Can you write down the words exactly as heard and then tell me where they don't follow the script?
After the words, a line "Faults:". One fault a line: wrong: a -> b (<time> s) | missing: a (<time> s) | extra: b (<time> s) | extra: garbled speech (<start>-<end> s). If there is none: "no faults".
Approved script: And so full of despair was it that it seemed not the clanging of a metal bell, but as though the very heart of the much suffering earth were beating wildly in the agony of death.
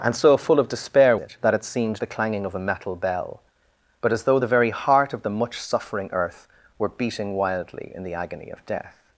And so full of despair it that it seemed the clanging of a metal bell, but as though the very heart of the much suffering earth were beating wildly in the agony of death.
Faults:
missing: was (1.1 s)
missing: not (2.0 s)